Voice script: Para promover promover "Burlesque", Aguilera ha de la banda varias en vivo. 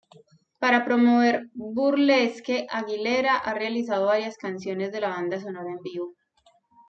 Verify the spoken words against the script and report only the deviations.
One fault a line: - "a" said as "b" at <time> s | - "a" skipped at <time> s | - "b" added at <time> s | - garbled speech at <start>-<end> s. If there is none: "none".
- "promover" skipped at 1.5 s
- "realizado varias canciones" added at 3.5 s
- "varias" said as "sonora" at 5.4 s